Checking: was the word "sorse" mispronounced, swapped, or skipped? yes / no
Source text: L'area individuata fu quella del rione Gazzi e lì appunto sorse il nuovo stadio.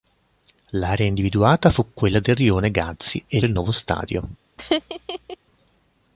yes